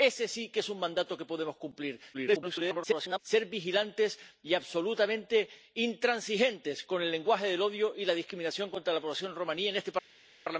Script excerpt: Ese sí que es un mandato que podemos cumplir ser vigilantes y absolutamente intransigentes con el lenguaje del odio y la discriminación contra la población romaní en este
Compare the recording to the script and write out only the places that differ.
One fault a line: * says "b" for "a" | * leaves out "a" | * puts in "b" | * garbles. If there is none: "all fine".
* garbles